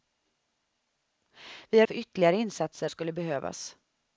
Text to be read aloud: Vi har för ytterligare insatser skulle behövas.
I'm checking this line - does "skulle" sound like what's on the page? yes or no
yes